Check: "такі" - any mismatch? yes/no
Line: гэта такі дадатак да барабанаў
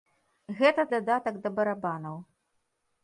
yes